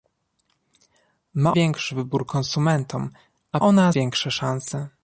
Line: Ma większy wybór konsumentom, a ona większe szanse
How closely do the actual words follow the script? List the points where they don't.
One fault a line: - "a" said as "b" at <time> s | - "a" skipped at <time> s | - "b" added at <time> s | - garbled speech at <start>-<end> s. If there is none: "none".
none